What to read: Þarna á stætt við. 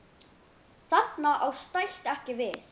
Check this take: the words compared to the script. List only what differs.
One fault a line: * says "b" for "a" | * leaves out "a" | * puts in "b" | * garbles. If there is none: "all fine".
* puts in "ekki"